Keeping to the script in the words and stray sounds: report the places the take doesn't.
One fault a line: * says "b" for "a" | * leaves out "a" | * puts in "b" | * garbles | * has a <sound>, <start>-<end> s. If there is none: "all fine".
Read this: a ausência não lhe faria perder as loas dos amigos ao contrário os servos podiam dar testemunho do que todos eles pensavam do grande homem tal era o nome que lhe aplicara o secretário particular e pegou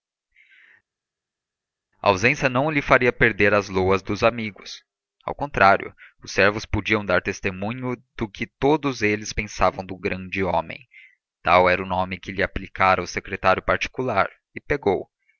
all fine